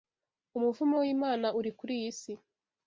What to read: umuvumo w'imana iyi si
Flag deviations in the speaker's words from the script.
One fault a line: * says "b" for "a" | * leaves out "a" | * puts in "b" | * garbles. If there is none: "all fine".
* puts in "uri kuri"